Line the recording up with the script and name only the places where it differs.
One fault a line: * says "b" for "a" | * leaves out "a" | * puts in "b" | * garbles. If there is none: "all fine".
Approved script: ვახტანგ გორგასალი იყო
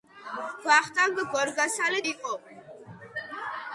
all fine